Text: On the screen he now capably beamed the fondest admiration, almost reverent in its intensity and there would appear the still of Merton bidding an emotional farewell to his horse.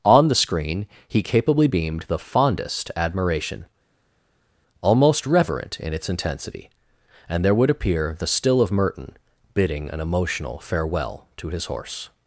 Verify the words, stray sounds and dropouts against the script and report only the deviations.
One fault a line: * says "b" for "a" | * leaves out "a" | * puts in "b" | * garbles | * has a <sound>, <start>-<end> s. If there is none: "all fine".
* leaves out "now"